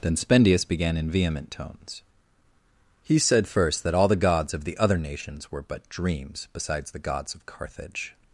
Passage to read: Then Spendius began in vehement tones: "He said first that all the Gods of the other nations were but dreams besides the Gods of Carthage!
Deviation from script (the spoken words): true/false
false